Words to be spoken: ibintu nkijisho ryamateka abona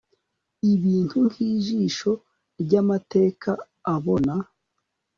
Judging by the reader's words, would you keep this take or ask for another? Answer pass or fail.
pass